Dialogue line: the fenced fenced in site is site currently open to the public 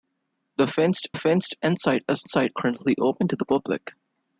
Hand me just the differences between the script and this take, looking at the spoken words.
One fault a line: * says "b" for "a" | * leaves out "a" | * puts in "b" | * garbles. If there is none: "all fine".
all fine